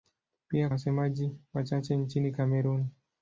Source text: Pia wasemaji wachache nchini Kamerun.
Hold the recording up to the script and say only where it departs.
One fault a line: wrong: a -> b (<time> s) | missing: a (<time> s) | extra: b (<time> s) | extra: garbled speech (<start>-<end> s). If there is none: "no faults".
no faults